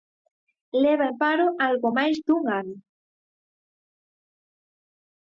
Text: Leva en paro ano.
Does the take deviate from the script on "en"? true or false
false